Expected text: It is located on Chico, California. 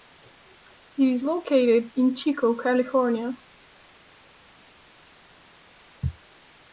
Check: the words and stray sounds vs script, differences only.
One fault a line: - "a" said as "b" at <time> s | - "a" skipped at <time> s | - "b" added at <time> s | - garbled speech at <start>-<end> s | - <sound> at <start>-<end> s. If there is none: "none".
- "on" said as "in" at 2.0 s